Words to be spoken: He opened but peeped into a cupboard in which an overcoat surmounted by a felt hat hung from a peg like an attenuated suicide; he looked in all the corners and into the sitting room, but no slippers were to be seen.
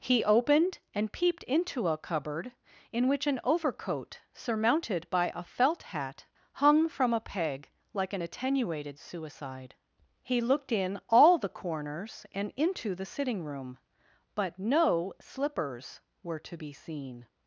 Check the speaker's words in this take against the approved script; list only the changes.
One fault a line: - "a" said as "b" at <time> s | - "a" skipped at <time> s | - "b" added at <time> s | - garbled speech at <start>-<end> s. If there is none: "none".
- "but" said as "and" at 0.9 s